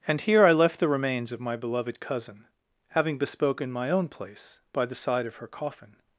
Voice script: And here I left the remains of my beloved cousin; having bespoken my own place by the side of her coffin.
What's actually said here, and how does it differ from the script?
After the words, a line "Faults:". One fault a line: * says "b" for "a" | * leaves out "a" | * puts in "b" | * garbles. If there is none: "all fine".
And here I left the remains of my beloved cousin; having bespoken my own place by the side of her coffin.
Faults:
all fine